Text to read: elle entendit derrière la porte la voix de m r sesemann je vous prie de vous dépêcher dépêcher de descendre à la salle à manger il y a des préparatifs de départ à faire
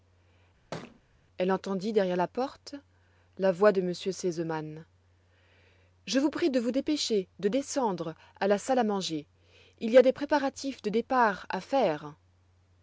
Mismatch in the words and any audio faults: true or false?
true